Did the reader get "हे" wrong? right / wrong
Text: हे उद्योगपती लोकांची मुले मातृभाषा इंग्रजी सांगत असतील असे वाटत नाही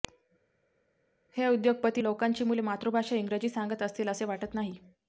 right